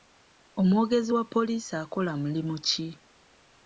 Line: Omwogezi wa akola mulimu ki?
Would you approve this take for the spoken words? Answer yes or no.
no